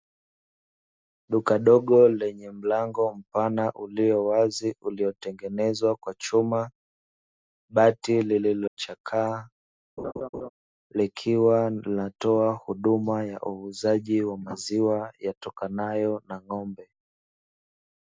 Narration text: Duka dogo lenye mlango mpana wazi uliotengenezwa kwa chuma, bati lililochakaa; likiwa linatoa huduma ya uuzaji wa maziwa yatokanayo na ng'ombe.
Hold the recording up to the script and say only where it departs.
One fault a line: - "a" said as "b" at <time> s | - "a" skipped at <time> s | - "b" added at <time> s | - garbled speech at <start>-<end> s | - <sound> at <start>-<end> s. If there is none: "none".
- "ulio" added at 3.7 s
- dropout at 8.7-8.8 s
- laugh at 10.0-10.5 s